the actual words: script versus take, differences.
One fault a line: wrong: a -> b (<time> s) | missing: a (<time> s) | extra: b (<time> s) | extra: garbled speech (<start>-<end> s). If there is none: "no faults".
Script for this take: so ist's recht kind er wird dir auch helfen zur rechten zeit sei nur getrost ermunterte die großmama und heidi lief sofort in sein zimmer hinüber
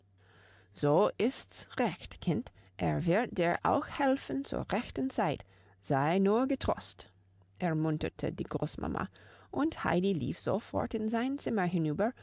no faults